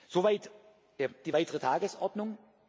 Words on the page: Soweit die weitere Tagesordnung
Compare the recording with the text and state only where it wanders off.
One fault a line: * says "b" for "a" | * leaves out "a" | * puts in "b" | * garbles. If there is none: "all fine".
all fine